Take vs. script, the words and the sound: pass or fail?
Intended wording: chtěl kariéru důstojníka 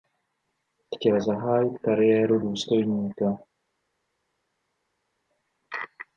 fail